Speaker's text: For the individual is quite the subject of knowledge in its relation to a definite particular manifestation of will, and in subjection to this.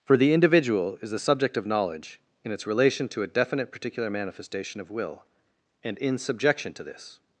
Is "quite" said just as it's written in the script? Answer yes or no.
no